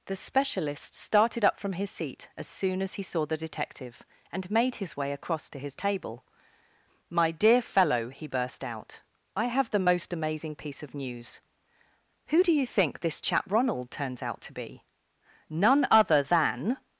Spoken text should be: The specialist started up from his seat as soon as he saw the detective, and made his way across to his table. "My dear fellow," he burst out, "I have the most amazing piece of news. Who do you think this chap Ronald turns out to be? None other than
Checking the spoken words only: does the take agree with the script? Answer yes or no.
yes